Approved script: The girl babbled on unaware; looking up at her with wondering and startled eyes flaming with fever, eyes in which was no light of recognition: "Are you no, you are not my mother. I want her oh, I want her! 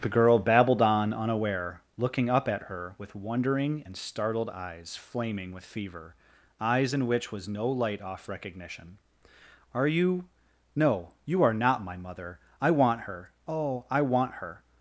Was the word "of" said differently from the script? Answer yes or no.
yes